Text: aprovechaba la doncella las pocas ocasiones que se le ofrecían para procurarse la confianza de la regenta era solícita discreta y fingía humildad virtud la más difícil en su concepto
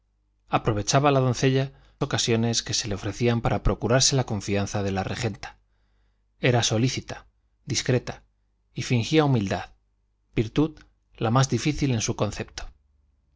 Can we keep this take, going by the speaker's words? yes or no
no